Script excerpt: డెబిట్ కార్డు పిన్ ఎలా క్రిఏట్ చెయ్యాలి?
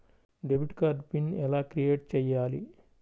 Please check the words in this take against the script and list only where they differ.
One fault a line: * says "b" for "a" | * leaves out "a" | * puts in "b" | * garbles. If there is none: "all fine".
all fine